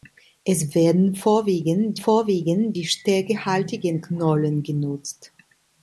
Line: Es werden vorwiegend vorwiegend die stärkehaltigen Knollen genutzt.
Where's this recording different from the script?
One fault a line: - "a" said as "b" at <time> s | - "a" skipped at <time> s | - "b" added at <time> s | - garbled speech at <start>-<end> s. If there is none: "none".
none